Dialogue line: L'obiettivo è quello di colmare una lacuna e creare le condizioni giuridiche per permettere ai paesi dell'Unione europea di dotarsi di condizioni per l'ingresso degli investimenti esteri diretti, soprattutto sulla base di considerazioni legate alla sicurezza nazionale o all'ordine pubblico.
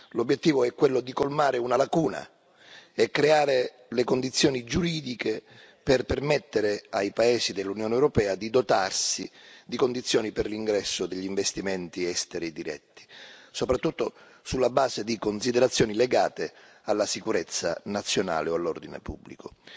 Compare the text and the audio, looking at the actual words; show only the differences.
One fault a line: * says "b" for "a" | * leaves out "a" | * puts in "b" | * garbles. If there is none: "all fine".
all fine